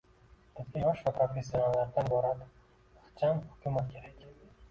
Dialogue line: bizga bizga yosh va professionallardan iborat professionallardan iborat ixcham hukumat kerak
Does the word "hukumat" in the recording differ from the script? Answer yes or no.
no